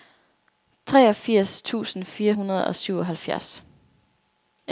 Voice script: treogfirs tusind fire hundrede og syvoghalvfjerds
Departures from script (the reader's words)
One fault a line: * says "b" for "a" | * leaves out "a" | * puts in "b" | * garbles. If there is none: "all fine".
all fine